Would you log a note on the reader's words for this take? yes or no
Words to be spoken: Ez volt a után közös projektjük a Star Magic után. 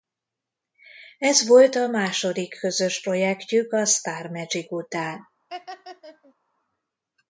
yes